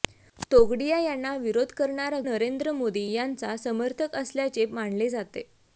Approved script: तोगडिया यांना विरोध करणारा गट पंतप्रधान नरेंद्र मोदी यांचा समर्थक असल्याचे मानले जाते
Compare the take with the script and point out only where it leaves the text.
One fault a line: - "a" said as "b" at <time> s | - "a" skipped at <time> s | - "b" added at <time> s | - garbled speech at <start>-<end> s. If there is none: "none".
- "गट पंतप्रधान" skipped at 2.2 s